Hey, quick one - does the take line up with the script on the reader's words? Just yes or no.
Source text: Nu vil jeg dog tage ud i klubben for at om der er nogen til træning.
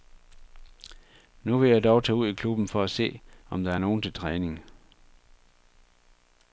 no